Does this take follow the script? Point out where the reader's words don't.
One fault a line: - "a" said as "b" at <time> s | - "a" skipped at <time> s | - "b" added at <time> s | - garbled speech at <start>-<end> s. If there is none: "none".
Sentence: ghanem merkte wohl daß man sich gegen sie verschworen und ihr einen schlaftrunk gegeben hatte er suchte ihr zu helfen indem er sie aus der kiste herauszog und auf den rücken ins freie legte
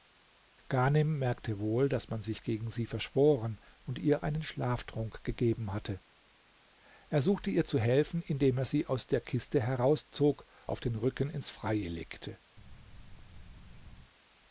- "und" skipped at 10.5 s